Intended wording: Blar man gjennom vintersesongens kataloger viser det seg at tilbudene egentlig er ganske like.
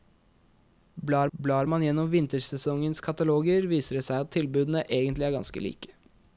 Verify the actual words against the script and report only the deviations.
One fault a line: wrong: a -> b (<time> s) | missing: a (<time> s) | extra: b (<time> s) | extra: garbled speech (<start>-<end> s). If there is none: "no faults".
extra: blar (1.4 s)